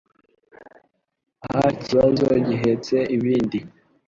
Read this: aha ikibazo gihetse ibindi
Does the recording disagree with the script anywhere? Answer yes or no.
no